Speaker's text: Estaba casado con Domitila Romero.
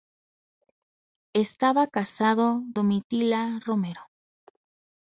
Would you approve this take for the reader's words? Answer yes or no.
no